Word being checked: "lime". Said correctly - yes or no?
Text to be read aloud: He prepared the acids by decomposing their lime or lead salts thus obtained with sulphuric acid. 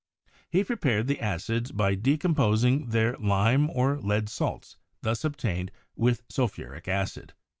yes